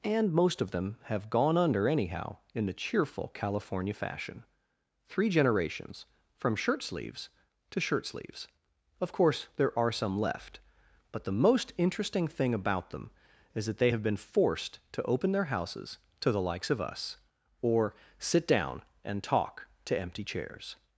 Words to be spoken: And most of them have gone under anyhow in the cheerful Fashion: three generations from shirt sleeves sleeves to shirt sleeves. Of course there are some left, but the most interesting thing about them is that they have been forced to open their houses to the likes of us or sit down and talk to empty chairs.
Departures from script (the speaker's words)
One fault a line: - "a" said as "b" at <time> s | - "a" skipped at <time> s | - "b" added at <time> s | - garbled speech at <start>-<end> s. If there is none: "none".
- "California" added at 3.4 s
- "sleeves" skipped at 7.3 s